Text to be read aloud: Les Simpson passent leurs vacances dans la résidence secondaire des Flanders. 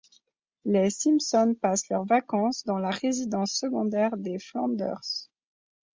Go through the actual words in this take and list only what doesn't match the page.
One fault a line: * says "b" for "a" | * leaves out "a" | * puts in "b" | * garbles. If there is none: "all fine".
all fine